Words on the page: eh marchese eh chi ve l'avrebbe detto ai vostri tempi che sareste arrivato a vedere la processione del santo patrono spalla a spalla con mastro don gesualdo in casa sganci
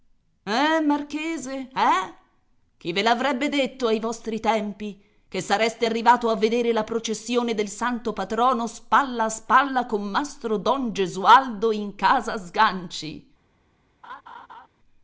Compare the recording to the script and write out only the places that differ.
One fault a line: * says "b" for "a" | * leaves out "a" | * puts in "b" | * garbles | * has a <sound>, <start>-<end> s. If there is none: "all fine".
* has a laugh, 14.0-14.7 s